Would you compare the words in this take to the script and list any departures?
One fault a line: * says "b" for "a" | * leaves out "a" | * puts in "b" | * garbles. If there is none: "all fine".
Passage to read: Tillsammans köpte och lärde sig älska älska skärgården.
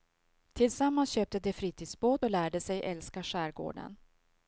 * puts in "de fritidsbåt"
* leaves out "älska"